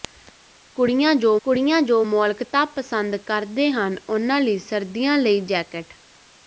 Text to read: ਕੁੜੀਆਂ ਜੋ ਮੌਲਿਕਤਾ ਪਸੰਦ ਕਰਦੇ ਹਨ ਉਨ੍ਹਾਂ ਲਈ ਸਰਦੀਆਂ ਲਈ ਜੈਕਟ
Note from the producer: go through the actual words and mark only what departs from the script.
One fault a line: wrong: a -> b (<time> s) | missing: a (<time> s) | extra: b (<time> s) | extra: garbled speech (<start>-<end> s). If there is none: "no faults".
extra: ਕੁੜੀਆਂ ਜੋ (1.5 s)